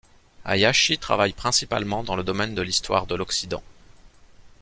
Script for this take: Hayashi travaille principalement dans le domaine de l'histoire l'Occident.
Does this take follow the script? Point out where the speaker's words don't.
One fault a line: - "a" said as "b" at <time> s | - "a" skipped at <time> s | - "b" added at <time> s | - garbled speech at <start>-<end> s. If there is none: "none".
- "de" added at 3.1 s